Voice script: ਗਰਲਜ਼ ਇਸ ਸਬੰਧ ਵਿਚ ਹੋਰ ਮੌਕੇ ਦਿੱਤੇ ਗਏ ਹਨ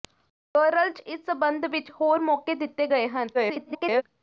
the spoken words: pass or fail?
fail